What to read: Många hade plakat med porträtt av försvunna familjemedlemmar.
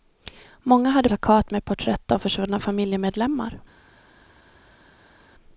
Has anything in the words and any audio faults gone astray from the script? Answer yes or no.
no